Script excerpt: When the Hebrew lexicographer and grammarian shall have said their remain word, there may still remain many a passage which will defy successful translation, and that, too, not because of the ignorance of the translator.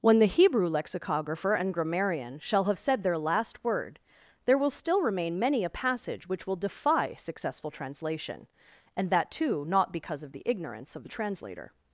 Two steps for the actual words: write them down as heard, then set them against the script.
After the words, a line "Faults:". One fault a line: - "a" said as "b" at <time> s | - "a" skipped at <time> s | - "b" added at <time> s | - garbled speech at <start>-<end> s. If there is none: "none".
When the Hebrew lexicographer and grammarian shall have said their last word, there will still remain many a passage which will defy successful translation, and that, too, not because of the ignorance of the translator.
Faults:
- "remain" said as "last" at 3.2 s
- "may" said as "will" at 4.6 s